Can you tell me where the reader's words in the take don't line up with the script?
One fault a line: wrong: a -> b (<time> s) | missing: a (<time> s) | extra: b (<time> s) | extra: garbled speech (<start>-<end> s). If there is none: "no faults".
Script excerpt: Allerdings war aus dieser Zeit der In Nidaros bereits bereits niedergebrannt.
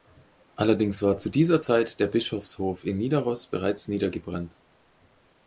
wrong: aus -> zu (1.2 s)
extra: Bischofshof (2.0 s)
missing: bereits (3.9 s)